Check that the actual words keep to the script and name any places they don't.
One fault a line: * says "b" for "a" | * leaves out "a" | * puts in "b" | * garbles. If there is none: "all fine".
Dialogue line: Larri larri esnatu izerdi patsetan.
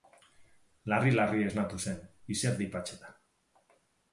* puts in "zen"